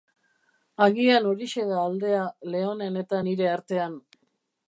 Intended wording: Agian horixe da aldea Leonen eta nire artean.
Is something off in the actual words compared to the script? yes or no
no